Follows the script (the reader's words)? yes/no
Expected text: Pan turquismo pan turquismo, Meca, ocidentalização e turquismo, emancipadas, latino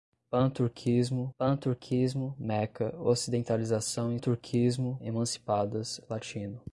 yes